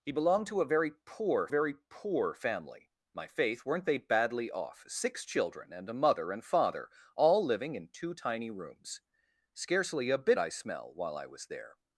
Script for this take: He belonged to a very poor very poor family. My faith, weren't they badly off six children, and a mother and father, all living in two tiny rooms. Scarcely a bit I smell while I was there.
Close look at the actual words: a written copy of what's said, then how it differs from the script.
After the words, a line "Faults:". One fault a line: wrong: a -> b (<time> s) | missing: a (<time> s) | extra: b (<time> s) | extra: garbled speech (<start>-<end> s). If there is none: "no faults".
He belonged to a very poor very poor family. My faith, weren't they badly off six children, and a mother and father, all living in two tiny rooms. Scarcely a bit I smell while I was there.
Faults:
no faults